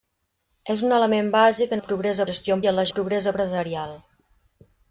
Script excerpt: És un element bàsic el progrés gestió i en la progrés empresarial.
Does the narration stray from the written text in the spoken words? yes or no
no